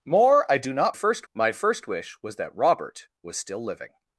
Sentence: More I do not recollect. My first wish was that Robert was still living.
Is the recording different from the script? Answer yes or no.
yes